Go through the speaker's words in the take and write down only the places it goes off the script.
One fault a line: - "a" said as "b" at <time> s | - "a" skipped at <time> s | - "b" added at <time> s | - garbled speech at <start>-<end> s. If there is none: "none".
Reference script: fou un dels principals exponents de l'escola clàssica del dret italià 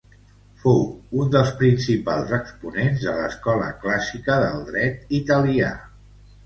none